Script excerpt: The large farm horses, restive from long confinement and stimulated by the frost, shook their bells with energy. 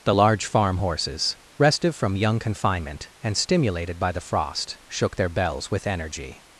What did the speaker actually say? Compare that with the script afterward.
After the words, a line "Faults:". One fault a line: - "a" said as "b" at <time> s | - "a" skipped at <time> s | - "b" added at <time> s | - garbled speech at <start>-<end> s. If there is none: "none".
The large farm horses, restive from young confinement and stimulated by the frost, shook their bells with energy.
Faults:
- "long" said as "young" at 2.1 s